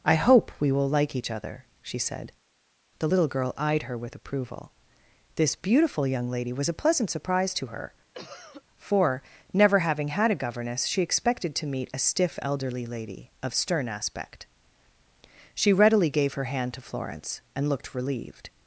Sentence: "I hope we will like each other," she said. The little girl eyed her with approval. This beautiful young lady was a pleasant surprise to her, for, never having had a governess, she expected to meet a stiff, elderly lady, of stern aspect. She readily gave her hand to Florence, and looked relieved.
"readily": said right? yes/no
yes